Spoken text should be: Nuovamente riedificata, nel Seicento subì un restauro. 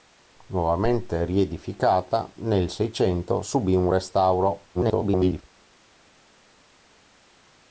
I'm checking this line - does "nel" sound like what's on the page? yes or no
yes